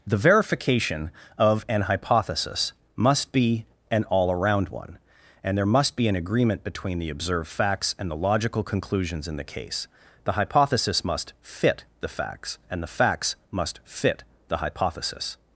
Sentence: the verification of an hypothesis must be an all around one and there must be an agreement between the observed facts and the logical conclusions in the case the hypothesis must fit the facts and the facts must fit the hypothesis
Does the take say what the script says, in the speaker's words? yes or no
yes